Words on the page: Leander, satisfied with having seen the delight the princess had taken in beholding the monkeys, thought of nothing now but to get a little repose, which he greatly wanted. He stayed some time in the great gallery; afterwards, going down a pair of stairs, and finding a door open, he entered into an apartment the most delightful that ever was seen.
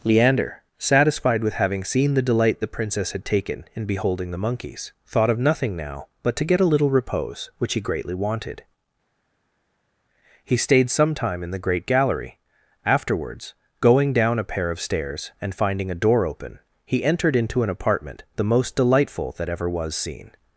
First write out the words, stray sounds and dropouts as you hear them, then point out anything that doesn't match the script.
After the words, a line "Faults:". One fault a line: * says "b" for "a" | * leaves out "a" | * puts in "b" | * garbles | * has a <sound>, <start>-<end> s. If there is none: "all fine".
Leander, satisfied with having seen the delight the princess had taken in beholding the monkeys, thought of nothing now but to get a little repose, which he greatly wanted. He stayed some time in the great gallery; afterwards, going down a pair of stairs, and finding a door open, he entered into an apartment the most delightful that ever was seen.
Faults:
all fine